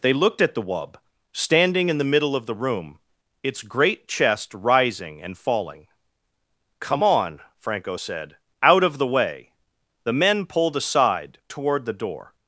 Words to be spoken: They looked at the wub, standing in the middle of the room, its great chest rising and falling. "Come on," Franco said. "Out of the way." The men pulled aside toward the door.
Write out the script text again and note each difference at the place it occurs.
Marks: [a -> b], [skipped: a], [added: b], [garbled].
They looked at the wub, standing in the middle of the room, its great chest rising and falling. "Come on," Franco said. "Out of the way." The men pulled aside toward the door.